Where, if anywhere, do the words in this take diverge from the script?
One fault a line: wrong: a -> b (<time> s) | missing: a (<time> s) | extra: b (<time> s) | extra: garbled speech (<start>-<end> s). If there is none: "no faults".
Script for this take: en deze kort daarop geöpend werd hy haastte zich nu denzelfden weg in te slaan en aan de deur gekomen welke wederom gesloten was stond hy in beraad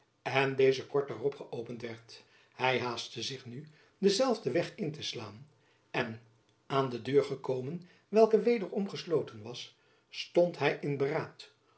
no faults